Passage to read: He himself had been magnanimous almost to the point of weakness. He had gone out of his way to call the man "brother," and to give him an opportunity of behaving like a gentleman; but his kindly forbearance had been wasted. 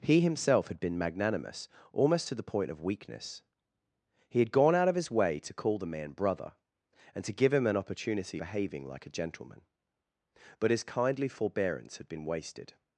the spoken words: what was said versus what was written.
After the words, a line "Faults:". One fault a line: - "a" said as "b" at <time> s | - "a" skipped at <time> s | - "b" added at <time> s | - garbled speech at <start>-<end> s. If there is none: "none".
He himself had been magnanimous almost to the point of weakness. He had gone out of his way to call the man "brother," and to give him an opportunity behaving like a gentleman; but his kindly forbearance had been wasted.
Faults:
- "of" skipped at 8.4 s